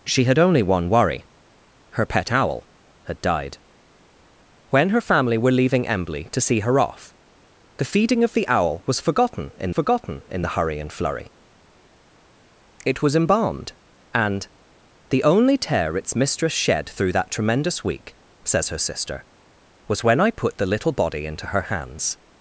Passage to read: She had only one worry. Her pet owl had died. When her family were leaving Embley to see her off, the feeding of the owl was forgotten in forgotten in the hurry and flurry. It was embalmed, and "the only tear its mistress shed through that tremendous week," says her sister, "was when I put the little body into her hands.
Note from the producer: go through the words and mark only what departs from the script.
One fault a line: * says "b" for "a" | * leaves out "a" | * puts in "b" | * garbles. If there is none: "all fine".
all fine